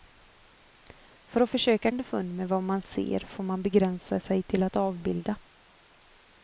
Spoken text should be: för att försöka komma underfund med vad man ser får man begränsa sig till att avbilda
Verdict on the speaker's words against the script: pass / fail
fail